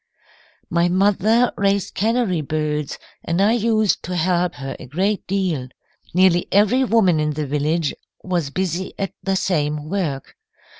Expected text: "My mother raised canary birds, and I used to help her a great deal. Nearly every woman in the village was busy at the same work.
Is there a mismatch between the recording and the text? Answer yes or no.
no